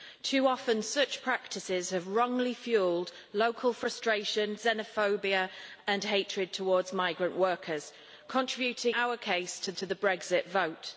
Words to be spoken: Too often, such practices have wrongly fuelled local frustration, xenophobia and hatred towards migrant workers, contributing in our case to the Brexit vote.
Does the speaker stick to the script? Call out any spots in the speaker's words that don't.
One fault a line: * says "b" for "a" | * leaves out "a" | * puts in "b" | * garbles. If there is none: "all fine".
* leaves out "in"
* puts in "to"